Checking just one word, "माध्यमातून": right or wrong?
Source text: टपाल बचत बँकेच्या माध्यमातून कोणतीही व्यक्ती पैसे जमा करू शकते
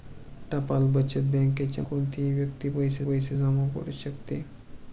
wrong